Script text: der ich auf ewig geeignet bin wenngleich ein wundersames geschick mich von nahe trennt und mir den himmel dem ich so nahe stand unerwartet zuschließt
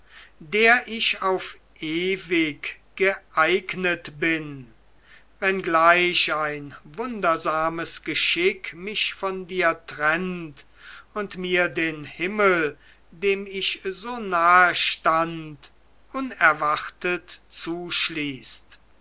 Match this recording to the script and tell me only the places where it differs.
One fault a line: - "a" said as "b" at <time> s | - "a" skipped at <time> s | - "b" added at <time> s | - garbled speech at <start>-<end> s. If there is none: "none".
- "nahe" said as "dir" at 9.5 s